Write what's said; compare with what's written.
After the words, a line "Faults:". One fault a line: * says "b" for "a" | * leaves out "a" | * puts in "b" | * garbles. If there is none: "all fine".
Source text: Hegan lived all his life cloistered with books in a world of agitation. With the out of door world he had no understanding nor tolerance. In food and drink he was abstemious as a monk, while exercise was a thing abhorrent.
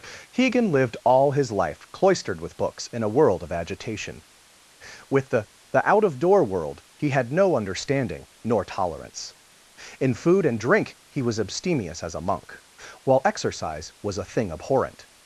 Hegan lived all his life cloistered with books in a world of agitation. With the the out of door world he had no understanding nor tolerance. In food and drink he was abstemious as a monk, while exercise was a thing abhorrent.
Faults:
* puts in "the"